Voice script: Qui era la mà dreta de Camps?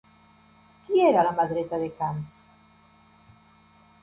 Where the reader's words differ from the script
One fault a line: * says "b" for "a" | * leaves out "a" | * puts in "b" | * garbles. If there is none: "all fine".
all fine